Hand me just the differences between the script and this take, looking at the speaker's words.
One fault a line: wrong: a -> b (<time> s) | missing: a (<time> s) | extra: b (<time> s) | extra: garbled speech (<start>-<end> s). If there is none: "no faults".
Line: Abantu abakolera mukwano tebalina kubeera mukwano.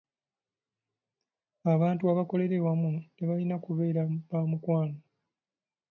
wrong: mukwano -> awamu (2.6 s)
extra: ba (4.3 s)